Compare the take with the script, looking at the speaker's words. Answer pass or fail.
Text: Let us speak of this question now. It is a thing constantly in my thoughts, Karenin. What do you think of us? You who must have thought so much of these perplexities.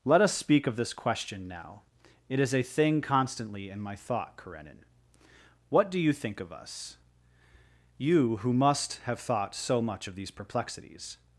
fail